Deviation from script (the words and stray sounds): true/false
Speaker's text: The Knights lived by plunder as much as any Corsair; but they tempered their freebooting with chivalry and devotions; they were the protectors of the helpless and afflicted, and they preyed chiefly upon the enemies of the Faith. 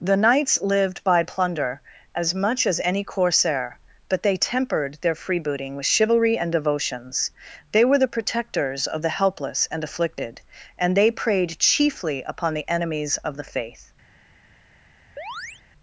true